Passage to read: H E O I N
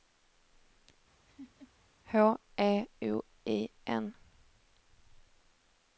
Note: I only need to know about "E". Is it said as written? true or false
true